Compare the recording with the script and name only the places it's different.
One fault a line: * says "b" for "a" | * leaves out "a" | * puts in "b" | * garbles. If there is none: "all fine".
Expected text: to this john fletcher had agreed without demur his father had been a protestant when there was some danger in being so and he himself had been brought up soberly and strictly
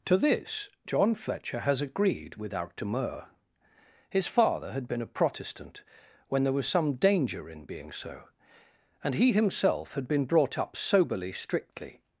* says "has" for "had"
* leaves out "and"